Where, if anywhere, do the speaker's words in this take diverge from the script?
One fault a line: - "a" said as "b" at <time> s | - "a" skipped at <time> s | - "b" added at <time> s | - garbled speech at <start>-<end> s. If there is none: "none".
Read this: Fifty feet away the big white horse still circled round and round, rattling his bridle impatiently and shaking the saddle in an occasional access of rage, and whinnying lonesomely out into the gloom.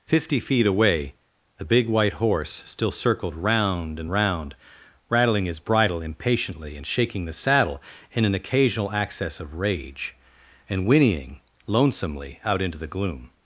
none